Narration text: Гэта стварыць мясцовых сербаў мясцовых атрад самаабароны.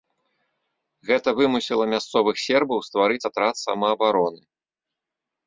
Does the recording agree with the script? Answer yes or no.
no